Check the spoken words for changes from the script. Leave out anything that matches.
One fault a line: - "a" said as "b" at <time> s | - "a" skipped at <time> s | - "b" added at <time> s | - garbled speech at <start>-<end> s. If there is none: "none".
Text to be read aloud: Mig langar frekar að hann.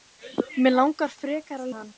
none